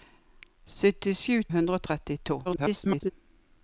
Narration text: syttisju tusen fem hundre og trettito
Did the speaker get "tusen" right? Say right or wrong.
wrong